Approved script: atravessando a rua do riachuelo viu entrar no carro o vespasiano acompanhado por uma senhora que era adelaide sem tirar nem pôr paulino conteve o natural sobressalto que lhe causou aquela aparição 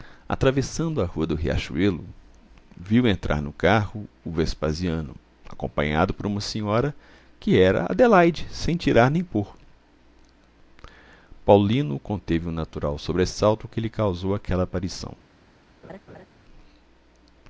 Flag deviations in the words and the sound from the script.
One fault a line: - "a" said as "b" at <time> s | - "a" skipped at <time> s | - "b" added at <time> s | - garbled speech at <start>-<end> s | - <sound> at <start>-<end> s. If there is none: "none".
- laugh at 15.8-16.3 s